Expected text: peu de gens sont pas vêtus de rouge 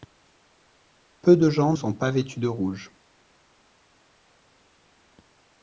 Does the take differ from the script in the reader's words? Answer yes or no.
no